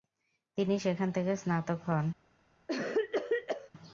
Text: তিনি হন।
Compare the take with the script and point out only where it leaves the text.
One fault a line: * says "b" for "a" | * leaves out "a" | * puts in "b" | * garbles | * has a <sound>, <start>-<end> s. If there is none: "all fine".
* puts in "সেখান থেকে স্নাতক"
* has a cough, 2.7-3.7 s